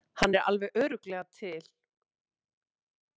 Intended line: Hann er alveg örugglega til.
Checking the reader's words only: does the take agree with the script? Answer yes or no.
yes